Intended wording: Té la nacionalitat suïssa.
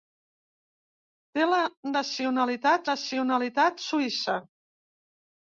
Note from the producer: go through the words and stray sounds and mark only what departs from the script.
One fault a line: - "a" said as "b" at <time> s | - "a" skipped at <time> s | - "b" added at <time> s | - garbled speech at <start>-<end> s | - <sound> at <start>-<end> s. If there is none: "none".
- "nacionalitat" added at 2.9 s